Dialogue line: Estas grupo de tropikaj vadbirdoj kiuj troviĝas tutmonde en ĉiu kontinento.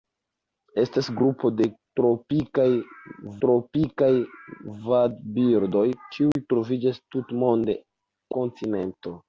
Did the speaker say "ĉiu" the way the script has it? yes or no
no